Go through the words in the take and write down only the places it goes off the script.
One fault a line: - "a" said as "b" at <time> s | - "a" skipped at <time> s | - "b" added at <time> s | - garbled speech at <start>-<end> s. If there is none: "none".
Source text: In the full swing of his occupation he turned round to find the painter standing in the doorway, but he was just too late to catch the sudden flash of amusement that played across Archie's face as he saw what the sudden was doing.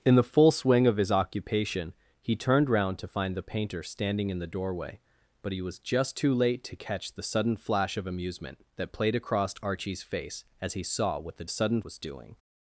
none